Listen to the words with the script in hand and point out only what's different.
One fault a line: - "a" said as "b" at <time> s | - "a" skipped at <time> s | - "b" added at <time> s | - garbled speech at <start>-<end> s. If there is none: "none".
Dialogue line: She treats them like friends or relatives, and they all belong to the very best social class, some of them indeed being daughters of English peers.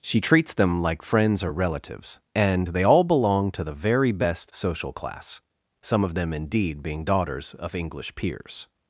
none